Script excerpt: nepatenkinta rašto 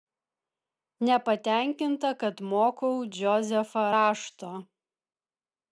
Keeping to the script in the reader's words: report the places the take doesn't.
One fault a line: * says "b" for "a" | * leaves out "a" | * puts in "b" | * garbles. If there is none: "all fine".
* puts in "kad mokau džozefą"